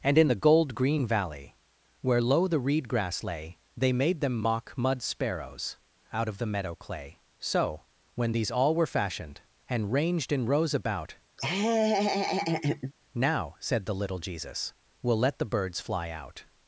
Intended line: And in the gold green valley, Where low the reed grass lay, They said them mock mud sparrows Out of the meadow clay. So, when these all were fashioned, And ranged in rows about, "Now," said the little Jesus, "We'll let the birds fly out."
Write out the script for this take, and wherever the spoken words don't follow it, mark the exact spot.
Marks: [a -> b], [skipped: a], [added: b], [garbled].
And in the gold green valley, Where low the reed grass lay, They [said -> made] them mock mud sparrows Out of the meadow clay. So, when these all were fashioned, And ranged in rows about, "Now," said the little Jesus, "We'll let the birds fly out."